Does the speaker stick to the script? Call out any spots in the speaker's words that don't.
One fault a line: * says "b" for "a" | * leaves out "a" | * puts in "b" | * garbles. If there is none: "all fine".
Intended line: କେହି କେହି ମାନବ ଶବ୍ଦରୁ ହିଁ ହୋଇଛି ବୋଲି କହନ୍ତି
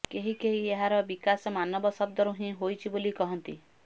* puts in "ଏହାର ବିକାଶ"